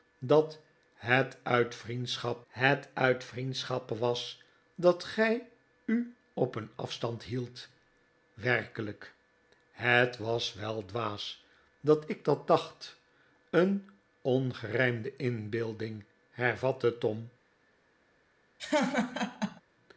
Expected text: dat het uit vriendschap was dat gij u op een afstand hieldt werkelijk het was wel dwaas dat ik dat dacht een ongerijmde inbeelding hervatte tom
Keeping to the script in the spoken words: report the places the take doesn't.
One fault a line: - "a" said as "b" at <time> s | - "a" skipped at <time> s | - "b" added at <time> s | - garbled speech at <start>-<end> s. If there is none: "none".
- "het uit vriendschap" added at 2.5 s